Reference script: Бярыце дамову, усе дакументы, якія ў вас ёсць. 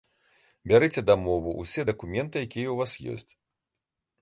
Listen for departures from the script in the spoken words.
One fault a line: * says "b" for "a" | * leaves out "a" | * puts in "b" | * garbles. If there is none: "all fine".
all fine